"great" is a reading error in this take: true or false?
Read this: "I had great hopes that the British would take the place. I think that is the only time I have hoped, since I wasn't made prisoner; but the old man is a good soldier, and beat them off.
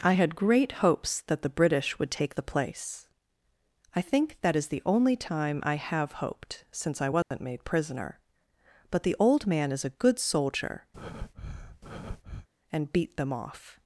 false